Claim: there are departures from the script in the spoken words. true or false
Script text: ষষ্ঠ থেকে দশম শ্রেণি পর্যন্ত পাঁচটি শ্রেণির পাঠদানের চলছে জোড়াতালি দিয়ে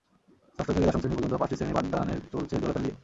false